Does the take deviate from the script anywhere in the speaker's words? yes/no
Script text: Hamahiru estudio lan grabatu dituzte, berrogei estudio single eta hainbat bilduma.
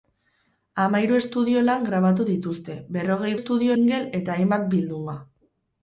no